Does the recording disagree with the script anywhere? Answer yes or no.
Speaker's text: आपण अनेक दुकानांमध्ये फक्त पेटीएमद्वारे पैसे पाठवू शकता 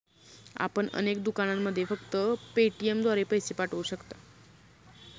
no